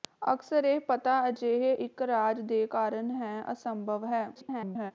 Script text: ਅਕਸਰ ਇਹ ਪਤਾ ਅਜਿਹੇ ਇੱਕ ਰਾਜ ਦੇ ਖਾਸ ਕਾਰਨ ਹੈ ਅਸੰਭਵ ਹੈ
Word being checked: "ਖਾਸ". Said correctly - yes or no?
no